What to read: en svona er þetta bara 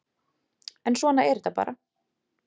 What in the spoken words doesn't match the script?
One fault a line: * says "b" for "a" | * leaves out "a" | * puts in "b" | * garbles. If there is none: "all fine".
all fine